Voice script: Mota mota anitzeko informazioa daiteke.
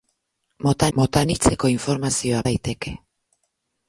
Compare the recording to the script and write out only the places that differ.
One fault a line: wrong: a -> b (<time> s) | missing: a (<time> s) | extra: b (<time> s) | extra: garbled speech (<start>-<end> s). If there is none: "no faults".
no faults